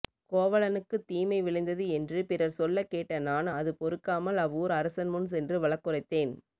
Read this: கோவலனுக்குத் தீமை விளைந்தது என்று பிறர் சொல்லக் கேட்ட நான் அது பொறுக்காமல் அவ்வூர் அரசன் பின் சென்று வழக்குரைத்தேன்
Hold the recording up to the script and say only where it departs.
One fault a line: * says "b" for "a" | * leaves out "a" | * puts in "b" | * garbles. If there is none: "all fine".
* says "முன்" for "பின்"